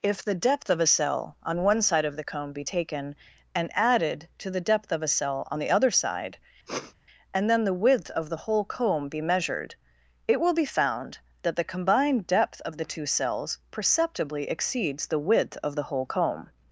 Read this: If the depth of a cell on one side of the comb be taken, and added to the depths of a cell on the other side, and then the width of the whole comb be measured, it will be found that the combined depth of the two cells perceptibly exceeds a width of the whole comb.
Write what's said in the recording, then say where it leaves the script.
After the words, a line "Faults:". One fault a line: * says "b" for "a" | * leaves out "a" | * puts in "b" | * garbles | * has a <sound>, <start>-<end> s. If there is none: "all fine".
If the depth of a cell on one side of the comb be taken, and added to the depth of a cell on the other side, and then the width of the whole comb be measured, it will be found that the combined depth of the two cells perceptibly exceeds the width of the whole comb.
Faults:
* says "depth" for "depths"
* has a sniff, 6.7-6.9 s
* says "the" for "a"